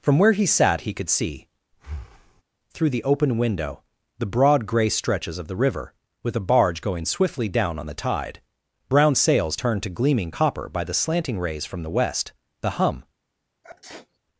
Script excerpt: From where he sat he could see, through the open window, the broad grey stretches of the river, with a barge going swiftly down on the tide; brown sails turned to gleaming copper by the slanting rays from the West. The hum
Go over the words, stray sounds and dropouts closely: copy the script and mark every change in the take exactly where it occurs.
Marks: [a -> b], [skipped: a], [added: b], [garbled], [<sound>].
From where he sat he could see, [breath] through the open window, the broad grey stretches of the river, with a barge going swiftly down on the tide; brown sails turned to gleaming copper by the slanting rays from the West. The hum [sneeze]